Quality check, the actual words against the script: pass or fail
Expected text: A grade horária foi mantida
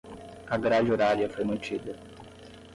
pass